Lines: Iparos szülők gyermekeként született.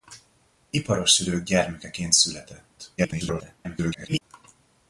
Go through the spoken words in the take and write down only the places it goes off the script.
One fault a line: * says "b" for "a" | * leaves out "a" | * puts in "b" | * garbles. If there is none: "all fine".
* garbles